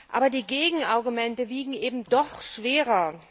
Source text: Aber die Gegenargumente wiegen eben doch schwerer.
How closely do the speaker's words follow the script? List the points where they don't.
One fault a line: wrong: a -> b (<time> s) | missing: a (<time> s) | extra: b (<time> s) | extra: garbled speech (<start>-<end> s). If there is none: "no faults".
no faults